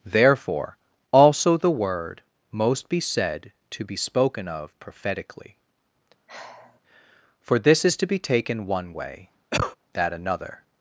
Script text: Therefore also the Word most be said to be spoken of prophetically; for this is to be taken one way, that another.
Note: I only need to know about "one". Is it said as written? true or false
true